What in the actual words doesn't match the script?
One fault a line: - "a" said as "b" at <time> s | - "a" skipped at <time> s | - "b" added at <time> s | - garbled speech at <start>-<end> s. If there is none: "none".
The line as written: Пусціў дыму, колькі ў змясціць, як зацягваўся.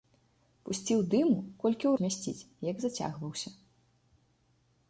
none